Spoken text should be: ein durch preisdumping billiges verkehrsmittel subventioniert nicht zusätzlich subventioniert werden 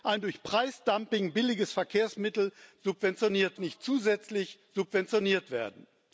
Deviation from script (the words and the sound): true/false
false